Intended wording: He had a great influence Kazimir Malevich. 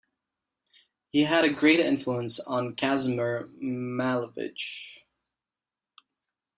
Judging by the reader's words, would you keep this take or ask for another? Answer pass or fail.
fail